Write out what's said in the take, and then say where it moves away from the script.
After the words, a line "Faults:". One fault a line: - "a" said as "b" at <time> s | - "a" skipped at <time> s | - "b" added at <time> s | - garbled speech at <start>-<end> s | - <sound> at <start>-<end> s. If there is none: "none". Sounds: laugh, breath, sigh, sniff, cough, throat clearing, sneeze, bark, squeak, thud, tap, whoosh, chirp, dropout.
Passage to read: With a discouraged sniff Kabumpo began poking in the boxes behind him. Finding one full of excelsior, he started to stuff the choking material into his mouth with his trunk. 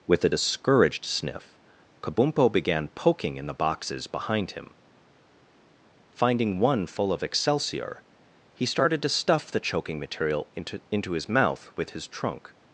With a discouraged sniff Kabumpo began poking in the boxes behind him. Finding one full of excelsior, he started to stuff the choking material into into his mouth with his trunk.
Faults:
- "into" added at 10.9 s